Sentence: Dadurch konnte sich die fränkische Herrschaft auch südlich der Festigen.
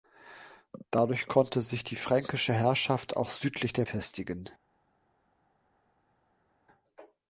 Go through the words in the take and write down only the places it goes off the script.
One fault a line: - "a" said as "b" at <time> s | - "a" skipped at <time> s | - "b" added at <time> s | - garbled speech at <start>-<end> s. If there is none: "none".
none